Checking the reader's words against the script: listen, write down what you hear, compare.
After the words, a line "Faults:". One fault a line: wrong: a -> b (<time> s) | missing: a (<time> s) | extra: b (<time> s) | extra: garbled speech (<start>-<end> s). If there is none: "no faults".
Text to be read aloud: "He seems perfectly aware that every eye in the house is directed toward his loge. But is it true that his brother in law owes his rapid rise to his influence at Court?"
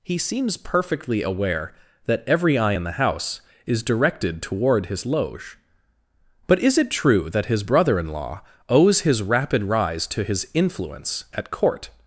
"He seems perfectly aware that every eye in the house is directed toward his loge. But is it true that his brother in law owes his rapid rise to his influence at Court?"
Faults:
no faults